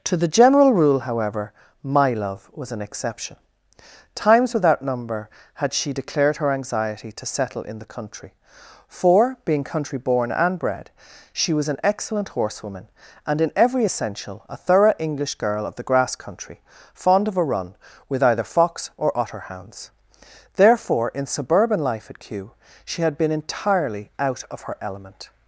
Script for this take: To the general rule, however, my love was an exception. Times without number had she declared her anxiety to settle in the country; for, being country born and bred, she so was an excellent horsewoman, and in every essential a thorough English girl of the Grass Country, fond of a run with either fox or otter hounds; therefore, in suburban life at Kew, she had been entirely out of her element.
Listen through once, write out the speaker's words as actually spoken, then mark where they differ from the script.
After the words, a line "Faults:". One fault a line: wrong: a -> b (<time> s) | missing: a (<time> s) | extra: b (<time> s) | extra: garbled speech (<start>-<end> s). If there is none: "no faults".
To the general rule, however, my love was an exception. Times without number had she declared her anxiety to settle in the country; for, being country born and bred, she was an excellent horsewoman, and in every essential a thorough English girl of the Grass Country, fond of a run with either fox or otter hounds; therefore, in suburban life at Kew, she had been entirely out of her element.
Faults:
missing: so (11.5 s)